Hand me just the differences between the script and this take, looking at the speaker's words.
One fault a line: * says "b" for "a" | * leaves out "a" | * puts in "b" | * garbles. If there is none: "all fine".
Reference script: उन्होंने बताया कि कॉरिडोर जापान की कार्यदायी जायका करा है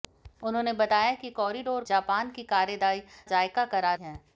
all fine